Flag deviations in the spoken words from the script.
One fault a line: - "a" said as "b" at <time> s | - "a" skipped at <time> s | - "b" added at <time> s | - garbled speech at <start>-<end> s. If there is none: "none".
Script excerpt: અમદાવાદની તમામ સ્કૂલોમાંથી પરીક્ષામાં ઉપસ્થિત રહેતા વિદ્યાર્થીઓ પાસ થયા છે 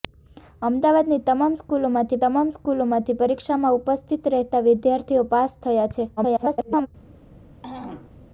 - "તમામ સ્કૂલોમાંથી" added at 2.2 s
- garbled speech at 6.2-6.9 s